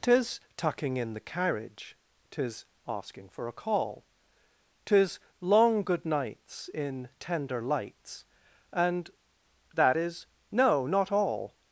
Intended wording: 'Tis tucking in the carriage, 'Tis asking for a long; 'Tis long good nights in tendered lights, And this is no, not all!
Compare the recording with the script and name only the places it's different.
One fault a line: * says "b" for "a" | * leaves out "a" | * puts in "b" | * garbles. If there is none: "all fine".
* says "call" for "long"
* says "tender" for "tendered"
* says "that" for "this"